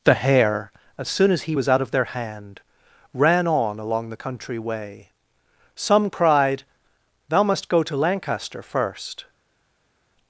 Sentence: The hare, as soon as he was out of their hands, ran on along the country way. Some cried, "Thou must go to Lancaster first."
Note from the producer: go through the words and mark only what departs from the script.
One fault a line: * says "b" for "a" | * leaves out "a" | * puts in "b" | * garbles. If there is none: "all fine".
* says "hand" for "hands"